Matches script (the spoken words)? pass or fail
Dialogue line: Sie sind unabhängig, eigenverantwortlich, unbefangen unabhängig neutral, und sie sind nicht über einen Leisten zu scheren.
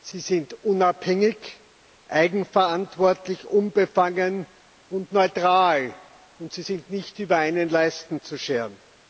fail